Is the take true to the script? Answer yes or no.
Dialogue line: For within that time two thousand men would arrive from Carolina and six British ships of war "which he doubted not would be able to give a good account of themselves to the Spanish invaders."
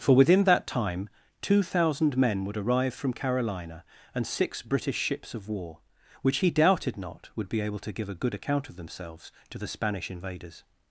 yes